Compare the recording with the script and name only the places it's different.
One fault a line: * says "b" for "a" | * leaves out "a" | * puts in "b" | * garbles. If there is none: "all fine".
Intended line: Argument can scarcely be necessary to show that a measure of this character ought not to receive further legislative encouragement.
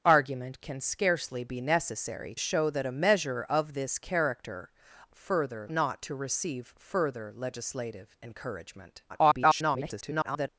* leaves out "to"
* says "further" for "ought"
* garbles